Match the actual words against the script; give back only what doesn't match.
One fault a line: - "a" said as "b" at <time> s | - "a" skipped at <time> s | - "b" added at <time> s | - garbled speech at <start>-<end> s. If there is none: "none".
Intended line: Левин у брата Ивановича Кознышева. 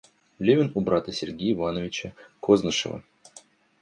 - "Сергея" added at 1.1 s